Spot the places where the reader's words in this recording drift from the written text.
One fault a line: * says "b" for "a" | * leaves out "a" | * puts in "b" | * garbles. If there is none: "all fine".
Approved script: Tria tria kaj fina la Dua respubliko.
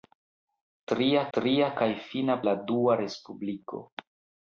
all fine